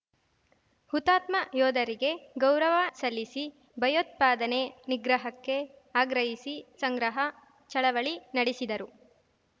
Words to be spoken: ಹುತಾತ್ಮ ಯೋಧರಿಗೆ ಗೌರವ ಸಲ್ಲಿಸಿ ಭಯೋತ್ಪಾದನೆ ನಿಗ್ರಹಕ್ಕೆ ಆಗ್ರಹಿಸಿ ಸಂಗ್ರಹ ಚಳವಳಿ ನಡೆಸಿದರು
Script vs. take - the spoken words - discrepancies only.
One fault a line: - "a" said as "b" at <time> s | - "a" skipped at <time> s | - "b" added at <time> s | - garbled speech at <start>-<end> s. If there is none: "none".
none